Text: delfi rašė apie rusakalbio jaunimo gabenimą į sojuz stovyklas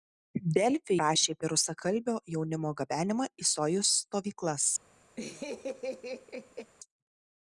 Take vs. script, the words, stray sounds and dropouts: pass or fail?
fail